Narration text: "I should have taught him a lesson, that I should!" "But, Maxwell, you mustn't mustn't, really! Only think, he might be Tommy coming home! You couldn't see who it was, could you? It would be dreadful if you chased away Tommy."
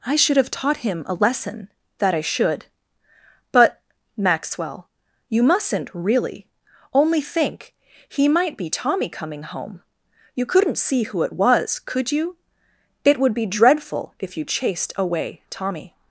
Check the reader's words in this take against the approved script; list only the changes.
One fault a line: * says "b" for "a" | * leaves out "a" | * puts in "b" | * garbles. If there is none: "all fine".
* leaves out "mustn't"